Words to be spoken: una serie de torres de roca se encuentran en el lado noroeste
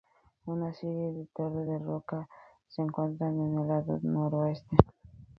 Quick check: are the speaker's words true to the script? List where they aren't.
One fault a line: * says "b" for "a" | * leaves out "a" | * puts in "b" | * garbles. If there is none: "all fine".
all fine